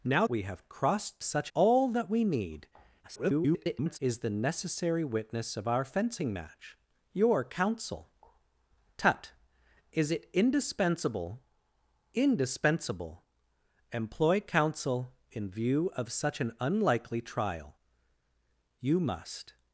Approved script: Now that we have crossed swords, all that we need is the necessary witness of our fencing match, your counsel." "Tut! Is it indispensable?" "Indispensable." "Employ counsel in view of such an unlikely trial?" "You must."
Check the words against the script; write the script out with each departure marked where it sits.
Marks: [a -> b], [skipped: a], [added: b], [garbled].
Now [skipped: that] we have crossed [swords, -> such] all that we need [garbled] is the necessary witness of our fencing match, your counsel." "Tut! Is it indispensable?" "Indispensable." "Employ counsel in view of such an unlikely trial?" "You must."